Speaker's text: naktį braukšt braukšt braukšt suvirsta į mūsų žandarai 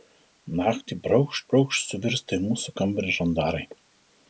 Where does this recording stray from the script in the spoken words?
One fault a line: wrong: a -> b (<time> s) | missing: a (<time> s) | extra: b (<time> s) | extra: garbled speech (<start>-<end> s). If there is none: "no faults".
missing: braukšt (1.9 s)
extra: kambarį (2.8 s)